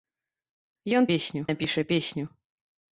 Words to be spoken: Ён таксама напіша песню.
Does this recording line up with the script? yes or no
no